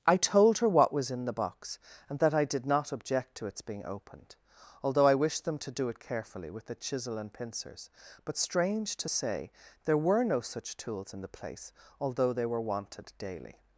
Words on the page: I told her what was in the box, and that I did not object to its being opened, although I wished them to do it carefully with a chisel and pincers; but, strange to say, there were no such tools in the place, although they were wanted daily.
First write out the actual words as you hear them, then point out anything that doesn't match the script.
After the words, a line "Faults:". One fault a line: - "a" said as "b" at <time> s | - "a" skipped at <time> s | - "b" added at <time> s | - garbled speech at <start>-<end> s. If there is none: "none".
I told her what was in the box, and that I did not object to its being opened, although I wished them to do it carefully with a chisel and pincers; but, strange to say, there were no such tools in the place, although they were wanted daily.
Faults:
none